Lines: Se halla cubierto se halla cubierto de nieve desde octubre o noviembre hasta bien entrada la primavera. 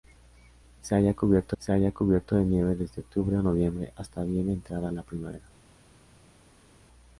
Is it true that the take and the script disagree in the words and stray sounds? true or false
false